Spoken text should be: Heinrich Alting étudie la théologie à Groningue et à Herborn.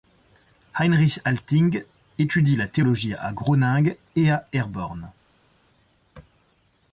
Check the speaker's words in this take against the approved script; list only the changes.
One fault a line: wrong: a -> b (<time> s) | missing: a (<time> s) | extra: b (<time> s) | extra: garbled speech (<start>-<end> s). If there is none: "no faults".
no faults